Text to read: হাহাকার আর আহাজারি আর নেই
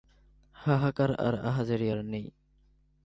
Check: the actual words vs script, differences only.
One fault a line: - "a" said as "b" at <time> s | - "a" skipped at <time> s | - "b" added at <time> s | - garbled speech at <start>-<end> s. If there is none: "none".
none